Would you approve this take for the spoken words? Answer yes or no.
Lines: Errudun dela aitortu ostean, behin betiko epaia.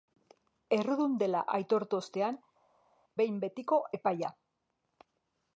yes